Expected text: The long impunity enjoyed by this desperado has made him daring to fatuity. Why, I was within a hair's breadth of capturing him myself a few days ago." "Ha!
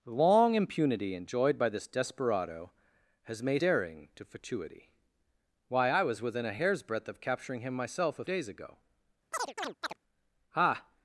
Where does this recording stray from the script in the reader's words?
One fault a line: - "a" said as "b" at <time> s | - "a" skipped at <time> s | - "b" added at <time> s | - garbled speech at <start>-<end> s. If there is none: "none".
- "him" skipped at 3.6 s
- "few" skipped at 8.2 s